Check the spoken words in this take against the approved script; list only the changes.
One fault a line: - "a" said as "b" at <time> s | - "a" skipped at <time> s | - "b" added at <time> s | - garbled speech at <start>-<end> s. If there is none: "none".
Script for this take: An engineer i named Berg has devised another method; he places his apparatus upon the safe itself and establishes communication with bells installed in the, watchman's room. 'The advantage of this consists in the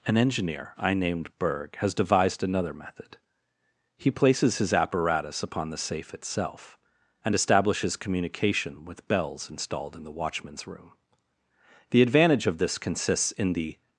none